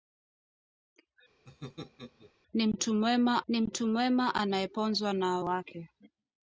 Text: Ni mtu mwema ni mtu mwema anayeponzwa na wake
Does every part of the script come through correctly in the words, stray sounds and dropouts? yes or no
no